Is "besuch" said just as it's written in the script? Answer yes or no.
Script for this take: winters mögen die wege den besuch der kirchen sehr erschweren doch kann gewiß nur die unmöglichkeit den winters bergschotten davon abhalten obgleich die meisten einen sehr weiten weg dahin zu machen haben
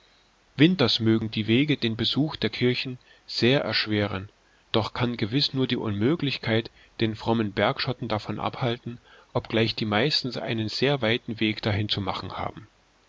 yes